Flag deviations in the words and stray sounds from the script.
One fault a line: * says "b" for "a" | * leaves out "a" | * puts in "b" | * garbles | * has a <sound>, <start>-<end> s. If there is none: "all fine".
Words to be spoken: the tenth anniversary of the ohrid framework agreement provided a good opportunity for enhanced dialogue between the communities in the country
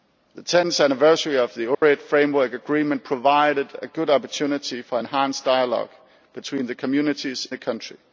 * has a dropout, 1.7-1.8 s
* leaves out "in"